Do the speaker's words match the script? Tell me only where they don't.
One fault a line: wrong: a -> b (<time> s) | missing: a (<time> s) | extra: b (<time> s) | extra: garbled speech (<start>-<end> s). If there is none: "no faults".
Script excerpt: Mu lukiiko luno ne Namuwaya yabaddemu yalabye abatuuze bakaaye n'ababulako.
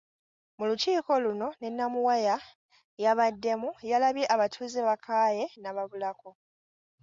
no faults